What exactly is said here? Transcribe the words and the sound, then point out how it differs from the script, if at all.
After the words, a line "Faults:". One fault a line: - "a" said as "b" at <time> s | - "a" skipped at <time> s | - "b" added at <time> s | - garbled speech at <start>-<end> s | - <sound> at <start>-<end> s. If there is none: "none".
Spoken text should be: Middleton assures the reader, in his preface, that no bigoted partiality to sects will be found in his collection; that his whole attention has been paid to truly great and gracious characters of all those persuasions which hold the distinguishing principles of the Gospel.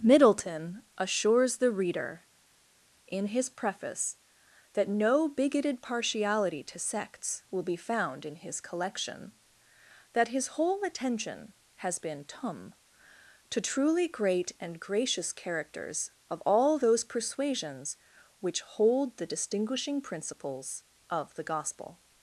Middleton assures the reader, in his preface, that no bigoted partiality to sects will be found in his collection; that his whole attention has been tum to truly great and gracious characters of all those persuasions which hold the distinguishing principles of the Gospel.
Faults:
- "paid" said as "tum" at 12.2 s